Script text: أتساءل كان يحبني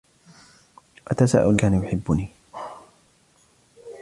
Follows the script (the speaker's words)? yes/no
yes